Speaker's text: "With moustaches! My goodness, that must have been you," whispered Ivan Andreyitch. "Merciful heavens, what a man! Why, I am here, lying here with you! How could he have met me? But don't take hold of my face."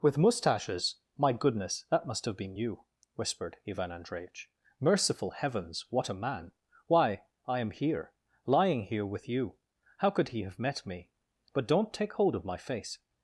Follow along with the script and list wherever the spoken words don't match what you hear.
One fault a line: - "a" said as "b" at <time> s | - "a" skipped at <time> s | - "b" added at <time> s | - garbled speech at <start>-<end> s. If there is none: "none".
none